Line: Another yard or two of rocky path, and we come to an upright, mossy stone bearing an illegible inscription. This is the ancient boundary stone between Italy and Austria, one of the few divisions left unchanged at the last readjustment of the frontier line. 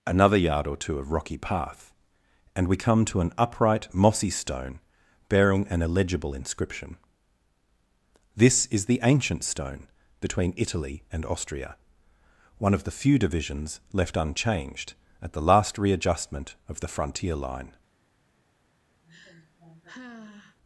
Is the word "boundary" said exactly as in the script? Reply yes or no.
no